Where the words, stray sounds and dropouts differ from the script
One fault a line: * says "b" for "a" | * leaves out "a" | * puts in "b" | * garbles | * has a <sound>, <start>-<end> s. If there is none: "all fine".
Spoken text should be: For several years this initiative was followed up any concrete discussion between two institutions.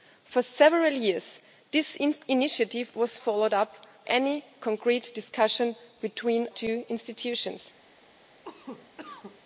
* has a cough, 8.4-9.4 s